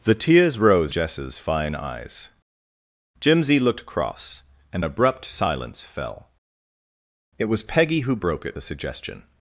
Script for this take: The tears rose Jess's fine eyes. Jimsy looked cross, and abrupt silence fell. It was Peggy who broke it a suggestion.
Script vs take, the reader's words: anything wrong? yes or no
no